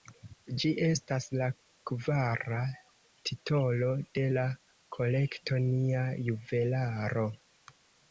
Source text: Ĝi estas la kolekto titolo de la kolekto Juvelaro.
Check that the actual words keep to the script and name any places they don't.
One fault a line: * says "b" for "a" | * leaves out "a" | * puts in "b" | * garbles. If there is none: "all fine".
* says "kvara" for "kolekto"
* puts in "Nia"